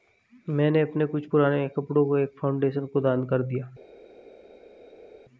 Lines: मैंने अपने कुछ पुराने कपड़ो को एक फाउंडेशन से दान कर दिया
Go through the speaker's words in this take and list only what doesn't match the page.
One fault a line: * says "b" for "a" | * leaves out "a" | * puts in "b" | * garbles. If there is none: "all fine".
* says "को" for "से"